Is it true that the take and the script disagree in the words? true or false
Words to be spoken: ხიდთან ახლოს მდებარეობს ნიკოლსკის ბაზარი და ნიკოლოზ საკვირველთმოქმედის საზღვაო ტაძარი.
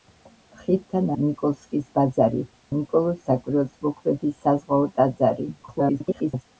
true